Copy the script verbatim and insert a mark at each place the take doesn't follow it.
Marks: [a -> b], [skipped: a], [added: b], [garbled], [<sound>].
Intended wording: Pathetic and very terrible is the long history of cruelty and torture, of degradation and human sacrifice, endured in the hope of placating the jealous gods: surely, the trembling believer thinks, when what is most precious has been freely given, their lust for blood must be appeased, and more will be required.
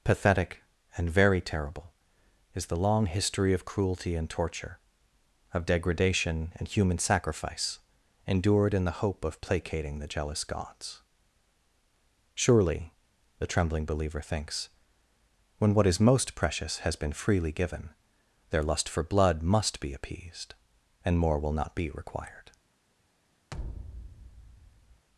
Pathetic and very terrible is the long history of cruelty and torture, of degradation and human sacrifice, endured in the hope of placating the jealous gods: surely, the trembling believer thinks, when what is most precious has been freely given, their lust for blood must be appeased, and more will [added: not] be required. [thud]